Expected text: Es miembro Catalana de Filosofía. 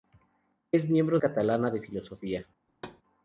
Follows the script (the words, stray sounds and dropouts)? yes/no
no